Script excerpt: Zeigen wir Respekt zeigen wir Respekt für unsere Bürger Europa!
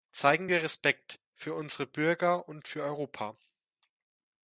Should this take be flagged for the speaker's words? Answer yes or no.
yes